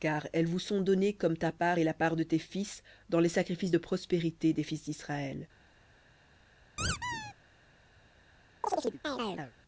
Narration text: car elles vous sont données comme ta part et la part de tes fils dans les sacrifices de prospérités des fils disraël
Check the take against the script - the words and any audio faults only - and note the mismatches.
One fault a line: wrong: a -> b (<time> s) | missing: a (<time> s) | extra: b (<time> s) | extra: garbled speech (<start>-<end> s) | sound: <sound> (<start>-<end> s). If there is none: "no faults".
sound: squeak (6.8-7.3 s)
sound: chirp (8.6-9.5 s)